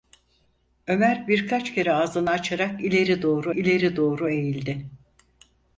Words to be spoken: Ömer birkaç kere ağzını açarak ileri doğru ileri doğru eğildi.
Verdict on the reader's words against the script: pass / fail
pass